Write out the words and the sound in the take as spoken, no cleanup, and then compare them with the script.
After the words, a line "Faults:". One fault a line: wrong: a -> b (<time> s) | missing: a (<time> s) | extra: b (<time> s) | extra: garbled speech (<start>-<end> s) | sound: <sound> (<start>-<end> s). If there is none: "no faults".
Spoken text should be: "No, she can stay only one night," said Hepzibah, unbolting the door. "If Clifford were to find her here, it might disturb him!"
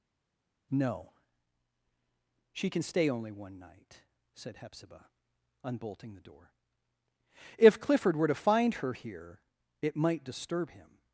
"No, she can stay only one night," said Hepzibah, unbolting the door. "If Clifford were to find her here, it might disturb him!"
Faults:
no faults